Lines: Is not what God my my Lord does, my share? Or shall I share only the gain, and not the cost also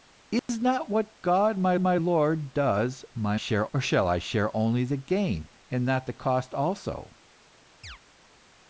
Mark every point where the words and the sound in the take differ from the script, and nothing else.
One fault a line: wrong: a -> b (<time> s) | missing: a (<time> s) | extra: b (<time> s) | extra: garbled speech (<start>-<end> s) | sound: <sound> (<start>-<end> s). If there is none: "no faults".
sound: dropout (0.4-0.5 s)
sound: chirp (7.8-8.0 s)